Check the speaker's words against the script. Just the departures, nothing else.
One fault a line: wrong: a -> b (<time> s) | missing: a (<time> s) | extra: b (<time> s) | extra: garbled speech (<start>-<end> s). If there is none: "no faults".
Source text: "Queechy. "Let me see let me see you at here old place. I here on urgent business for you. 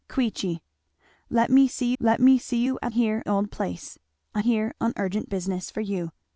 no faults